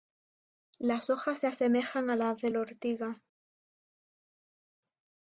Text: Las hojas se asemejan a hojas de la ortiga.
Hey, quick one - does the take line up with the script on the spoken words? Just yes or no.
no